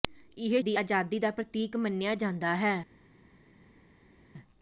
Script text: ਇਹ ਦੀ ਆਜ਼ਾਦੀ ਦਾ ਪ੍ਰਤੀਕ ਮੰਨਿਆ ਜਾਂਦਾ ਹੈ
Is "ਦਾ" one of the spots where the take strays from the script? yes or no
no